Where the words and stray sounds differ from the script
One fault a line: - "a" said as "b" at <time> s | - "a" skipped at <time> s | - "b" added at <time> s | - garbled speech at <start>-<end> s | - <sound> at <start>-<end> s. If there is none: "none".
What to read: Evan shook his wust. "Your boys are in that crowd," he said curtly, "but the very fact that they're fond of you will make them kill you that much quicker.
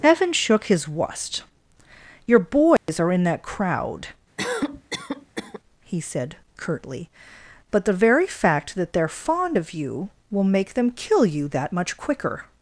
- dropout at 2.8-2.9 s
- cough at 4.4-5.6 s